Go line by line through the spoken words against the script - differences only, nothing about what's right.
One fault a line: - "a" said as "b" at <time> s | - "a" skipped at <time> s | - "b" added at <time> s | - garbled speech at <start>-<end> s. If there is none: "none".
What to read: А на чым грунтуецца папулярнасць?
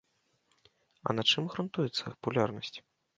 none